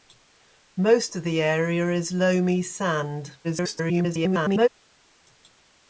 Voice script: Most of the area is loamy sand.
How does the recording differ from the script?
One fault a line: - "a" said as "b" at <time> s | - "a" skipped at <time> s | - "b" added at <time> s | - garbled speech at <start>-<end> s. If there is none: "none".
- garbled speech at 3.4-4.7 s